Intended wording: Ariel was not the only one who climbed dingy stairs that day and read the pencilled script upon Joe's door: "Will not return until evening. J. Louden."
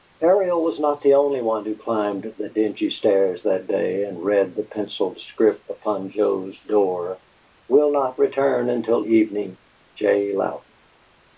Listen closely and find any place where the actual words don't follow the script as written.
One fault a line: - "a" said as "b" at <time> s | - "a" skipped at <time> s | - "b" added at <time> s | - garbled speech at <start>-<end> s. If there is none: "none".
- "the" added at 2.4 s